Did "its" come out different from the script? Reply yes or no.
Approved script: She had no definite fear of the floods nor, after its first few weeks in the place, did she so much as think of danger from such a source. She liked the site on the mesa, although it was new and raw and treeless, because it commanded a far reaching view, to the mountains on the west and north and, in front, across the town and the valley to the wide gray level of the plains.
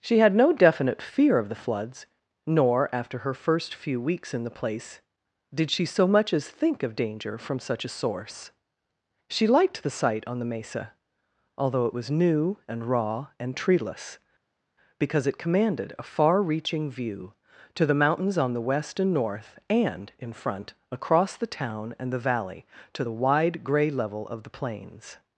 yes